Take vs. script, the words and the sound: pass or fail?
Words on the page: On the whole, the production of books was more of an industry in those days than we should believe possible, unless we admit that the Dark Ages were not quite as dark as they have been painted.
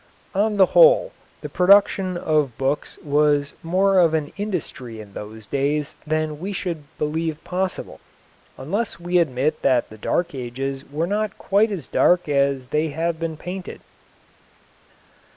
pass